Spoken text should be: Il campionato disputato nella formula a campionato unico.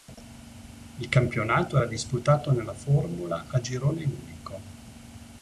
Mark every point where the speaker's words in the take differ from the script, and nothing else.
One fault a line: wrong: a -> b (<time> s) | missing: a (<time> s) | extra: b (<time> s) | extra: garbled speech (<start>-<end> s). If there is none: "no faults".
extra: era (1.8 s)
wrong: campionato -> girone (3.6 s)